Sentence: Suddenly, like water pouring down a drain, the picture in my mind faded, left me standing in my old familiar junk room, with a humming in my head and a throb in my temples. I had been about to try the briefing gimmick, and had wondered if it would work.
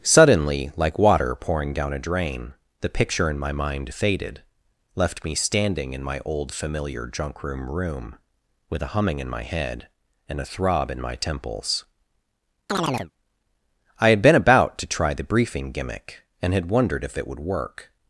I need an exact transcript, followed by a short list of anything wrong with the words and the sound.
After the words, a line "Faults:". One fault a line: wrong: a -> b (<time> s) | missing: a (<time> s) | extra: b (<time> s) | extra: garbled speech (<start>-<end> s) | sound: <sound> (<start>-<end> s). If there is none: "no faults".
Suddenly, like water pouring down a drain, the picture in my mind faded, left me standing in my old familiar junk room room, with a humming in my head and a throb in my temples. I had been about to try the briefing gimmick, and had wondered if it would work.
Faults:
extra: room (7.7 s)
sound: chirp (12.7-13.1 s)